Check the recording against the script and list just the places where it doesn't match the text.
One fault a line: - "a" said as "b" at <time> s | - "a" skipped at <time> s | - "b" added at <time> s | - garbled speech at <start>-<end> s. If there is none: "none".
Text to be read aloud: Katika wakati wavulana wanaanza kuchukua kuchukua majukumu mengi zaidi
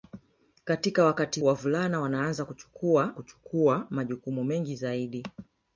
none